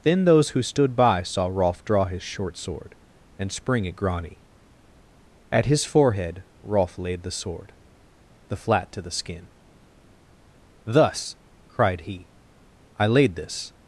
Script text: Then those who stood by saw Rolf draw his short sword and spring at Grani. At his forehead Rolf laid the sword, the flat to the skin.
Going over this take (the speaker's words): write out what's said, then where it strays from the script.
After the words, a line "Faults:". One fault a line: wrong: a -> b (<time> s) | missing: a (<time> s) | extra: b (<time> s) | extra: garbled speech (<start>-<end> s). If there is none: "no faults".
Then those who stood by saw Rolf draw his short sword and spring at Grani. At his forehead Rolf laid the sword, the flat to the skin. "Thus," cried he, "I laid this
Faults:
extra: Thus cried he I laid this (10.8 s)